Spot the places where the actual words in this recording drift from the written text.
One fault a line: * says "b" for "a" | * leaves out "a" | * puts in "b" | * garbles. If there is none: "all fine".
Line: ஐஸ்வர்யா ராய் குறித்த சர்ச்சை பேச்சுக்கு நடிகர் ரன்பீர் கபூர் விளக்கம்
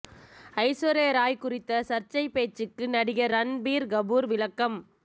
all fine